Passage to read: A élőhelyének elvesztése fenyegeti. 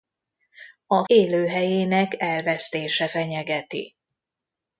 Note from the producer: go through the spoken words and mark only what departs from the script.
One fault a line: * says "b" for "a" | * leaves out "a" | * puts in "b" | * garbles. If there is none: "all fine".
all fine